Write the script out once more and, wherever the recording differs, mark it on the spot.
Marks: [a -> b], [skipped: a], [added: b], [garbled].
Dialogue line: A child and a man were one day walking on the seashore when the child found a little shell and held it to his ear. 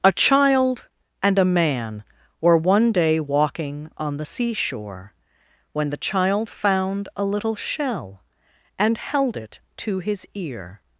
A child and a man were one day walking on the seashore when the child found a little shell and held it to his ear.